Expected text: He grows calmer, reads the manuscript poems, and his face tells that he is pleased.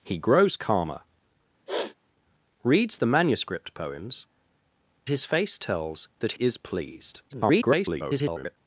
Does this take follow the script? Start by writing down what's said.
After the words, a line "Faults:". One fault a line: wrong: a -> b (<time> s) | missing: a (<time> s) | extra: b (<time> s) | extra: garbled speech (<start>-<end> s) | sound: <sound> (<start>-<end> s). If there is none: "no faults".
He grows calmer, reads the manuscript poems, his face tells that is pleased. [garbled]
Faults:
sound: sniff (1.7-1.9 s)
missing: and (4.2 s)
missing: he (6.3 s)
extra: garbled speech (7.3-8.6 s)